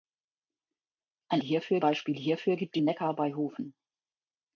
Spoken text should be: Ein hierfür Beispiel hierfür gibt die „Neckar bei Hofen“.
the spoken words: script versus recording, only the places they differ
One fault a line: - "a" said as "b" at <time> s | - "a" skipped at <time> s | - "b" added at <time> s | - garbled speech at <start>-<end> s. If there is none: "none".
none